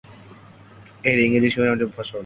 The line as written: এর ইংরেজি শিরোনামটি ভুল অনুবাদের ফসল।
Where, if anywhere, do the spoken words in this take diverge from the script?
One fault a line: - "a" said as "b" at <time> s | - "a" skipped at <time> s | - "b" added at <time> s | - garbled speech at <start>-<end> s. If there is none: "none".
- "ভুল অনুবাদের" skipped at 1.8 s